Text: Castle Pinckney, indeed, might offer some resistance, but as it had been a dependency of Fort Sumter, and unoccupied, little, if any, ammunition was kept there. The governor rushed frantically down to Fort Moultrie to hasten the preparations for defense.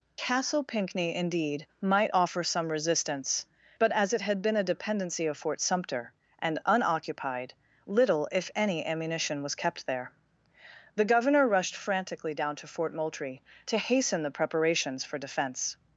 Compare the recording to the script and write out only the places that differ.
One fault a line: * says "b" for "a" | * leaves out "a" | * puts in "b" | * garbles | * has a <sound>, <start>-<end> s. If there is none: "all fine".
all fine